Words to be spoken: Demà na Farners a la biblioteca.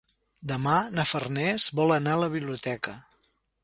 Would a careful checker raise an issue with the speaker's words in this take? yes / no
yes